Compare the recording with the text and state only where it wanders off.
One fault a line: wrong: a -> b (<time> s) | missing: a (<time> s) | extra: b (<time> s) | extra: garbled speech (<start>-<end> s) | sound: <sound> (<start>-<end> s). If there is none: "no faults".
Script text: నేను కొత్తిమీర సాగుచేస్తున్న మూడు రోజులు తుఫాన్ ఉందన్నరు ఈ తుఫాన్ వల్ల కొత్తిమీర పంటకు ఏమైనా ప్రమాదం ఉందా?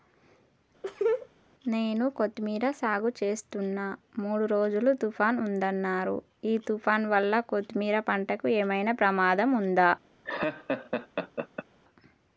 sound: laugh (0.8-1.3 s)
sound: laugh (10.2-11.7 s)